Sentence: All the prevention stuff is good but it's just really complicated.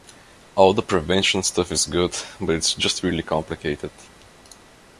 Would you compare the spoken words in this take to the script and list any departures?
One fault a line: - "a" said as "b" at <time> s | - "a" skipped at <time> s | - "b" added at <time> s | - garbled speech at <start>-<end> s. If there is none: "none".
none